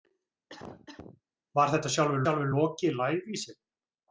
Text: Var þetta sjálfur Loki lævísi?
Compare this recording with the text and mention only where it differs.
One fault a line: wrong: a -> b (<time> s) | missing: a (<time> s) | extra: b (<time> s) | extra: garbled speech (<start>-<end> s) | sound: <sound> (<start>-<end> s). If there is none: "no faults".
sound: cough (0.5-1.2 s)
extra: sjálfur (2.2 s)